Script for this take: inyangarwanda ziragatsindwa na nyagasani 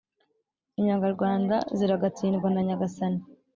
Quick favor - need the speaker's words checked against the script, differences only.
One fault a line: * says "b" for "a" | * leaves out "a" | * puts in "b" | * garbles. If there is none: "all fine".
all fine